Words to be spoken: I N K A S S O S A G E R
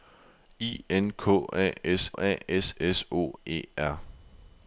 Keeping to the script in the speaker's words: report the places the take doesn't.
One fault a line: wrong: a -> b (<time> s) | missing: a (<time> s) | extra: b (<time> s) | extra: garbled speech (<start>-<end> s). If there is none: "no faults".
extra: A (2.2 s)
missing: O (2.7 s)
wrong: A G -> O (3.1 s)